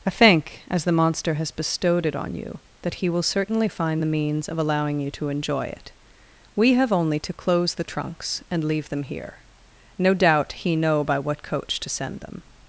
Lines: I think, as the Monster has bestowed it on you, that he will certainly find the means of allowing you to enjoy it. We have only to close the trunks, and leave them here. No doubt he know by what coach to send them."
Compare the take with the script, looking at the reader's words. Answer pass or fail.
pass